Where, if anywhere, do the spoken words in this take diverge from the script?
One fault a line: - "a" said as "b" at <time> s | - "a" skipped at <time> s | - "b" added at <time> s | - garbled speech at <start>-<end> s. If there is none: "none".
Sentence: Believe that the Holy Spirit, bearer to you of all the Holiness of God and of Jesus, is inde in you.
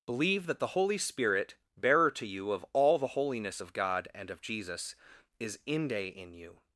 none